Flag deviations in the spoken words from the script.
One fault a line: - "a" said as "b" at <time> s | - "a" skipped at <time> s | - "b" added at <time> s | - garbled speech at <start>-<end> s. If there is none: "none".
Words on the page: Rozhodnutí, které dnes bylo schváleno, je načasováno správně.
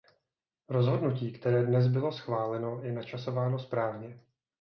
none